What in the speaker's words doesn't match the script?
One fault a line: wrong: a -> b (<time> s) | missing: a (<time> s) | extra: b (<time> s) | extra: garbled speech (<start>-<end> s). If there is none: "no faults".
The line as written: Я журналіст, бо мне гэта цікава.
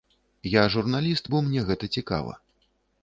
no faults